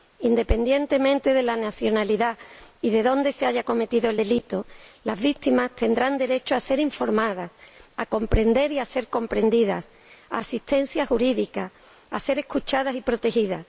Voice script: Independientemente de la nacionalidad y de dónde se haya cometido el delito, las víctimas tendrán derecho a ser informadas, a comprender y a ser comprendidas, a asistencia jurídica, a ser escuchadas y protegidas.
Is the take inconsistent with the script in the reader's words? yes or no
no